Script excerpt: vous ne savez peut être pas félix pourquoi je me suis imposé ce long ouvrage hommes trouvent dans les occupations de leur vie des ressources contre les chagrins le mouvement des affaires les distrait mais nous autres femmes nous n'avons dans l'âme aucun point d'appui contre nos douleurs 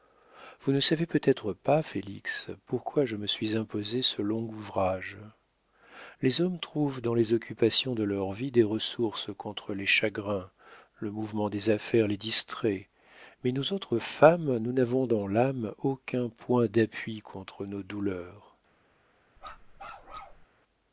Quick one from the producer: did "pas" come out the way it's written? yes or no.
yes